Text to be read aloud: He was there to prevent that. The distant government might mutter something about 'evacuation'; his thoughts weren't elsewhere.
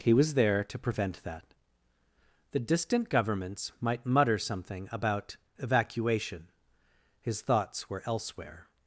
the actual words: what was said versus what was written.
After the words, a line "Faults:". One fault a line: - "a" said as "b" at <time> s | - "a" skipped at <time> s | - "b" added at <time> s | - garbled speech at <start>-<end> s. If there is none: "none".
He was there to prevent that. The distant governments might mutter something about 'evacuation'; his thoughts were elsewhere.
Faults:
- "government" said as "governments" at 3.1 s
- "weren't" said as "were" at 7.9 s